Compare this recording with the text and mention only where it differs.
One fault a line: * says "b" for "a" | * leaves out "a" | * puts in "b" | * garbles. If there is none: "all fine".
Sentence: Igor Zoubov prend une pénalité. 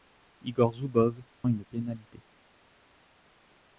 * leaves out "prend"